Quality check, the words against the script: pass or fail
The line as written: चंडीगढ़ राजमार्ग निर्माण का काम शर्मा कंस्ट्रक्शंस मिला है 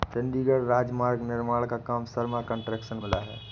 pass